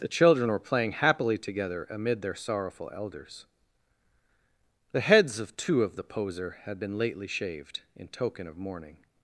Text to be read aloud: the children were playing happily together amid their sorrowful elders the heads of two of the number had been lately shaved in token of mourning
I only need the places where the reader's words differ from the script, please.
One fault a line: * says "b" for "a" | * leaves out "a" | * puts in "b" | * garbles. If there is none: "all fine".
* says "poser" for "number"